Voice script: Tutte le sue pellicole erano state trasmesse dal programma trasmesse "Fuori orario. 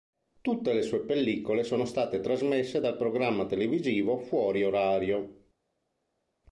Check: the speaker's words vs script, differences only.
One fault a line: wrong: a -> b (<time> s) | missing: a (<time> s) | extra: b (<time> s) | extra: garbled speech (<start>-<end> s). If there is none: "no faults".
wrong: erano -> sono (1.6 s)
wrong: trasmesse -> televisivo (3.5 s)